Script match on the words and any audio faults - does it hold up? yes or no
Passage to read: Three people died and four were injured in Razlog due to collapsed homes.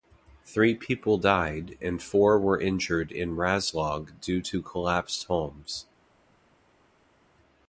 yes